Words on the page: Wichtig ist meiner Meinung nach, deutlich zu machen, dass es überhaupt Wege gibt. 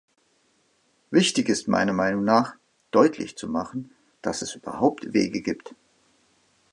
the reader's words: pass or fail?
pass